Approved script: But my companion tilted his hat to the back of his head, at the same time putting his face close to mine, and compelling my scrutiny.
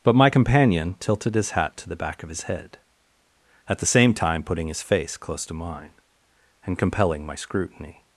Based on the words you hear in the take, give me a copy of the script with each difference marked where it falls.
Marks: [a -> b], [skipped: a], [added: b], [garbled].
But my companion tilted his hat to the back of his head, at the same time putting his face close to mine, and compelling my scrutiny.